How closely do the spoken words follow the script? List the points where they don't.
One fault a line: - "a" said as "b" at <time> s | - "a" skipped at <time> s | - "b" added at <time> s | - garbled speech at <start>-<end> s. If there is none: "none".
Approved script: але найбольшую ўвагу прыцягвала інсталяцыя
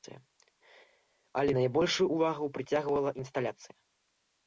none